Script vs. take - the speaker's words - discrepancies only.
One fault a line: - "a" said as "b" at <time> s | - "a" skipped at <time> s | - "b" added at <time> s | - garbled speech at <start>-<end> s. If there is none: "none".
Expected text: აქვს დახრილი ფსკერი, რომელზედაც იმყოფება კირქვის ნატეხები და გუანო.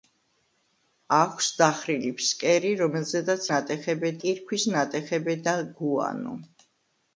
- "იმყოფება" said as "ნატეხები" at 3.5 s